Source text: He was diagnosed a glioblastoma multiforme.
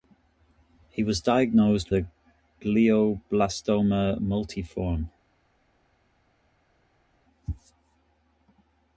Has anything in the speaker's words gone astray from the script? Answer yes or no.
no